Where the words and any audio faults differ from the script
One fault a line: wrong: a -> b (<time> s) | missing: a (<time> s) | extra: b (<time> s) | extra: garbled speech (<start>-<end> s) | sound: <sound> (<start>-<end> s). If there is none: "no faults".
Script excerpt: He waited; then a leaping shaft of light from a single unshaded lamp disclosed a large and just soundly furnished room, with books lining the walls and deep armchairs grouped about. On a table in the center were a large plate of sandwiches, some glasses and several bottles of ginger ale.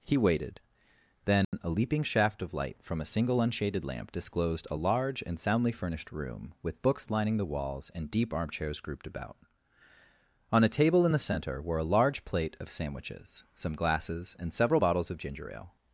sound: dropout (1.4-1.5 s)
missing: just (5.4 s)